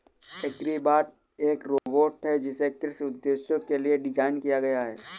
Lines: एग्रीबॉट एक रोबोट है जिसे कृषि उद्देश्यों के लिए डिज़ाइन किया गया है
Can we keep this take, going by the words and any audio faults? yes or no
no